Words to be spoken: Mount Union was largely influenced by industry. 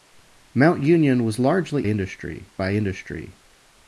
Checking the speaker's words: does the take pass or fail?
fail